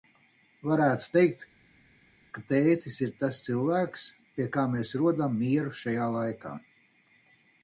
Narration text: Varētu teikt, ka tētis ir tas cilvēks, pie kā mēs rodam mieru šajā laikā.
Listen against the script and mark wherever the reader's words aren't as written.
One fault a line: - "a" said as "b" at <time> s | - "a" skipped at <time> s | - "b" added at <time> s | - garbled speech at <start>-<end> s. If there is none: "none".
none